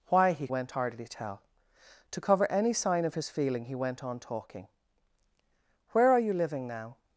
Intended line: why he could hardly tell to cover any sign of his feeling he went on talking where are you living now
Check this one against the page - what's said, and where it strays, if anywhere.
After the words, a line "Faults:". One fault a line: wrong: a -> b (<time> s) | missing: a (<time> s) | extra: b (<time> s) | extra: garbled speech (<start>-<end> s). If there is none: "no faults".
why he went hardly tell to cover any sign of his feeling he went on talking where are you living now
Faults:
wrong: could -> went (0.5 s)